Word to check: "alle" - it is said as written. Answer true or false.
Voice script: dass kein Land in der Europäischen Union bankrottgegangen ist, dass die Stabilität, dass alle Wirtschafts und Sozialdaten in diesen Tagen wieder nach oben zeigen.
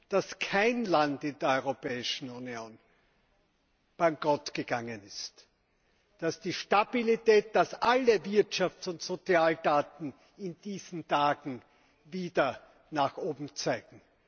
true